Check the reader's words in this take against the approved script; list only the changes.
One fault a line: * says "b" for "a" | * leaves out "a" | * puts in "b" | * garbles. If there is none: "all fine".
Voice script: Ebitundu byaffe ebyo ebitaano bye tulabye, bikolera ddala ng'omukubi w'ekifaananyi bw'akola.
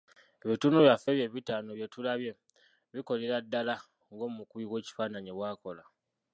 all fine